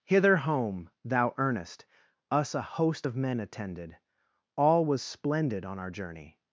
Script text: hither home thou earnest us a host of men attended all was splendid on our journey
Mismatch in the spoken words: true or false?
false